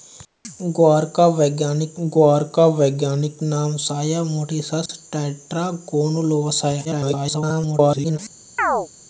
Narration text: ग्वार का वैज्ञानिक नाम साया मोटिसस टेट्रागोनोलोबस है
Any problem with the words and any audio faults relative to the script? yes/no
yes